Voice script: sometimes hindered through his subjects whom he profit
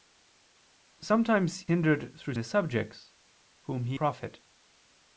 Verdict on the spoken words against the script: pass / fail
pass